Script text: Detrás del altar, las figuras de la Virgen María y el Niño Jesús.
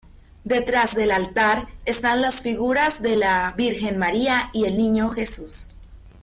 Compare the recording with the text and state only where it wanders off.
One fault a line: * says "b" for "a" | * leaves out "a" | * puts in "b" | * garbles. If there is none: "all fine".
* puts in "están"